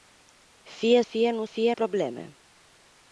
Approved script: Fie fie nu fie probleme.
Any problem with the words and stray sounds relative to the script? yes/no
no